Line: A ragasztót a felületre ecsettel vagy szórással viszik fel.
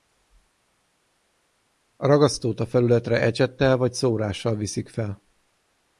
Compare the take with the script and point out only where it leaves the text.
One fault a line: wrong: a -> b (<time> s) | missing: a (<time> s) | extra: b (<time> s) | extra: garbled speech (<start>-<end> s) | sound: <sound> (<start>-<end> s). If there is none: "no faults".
no faults